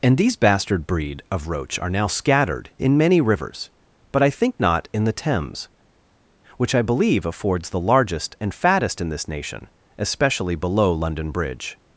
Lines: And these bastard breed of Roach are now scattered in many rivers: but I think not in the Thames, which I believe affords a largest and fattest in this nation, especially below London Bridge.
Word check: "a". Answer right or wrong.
wrong